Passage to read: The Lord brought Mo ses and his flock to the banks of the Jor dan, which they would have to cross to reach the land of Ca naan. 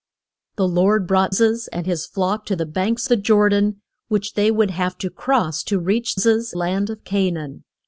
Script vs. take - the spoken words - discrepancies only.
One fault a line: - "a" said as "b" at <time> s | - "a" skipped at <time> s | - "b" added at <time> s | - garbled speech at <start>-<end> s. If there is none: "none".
- "Mo" skipped at 1.4 s
- "of" skipped at 3.1 s
- "the" said as "ses" at 6.1 s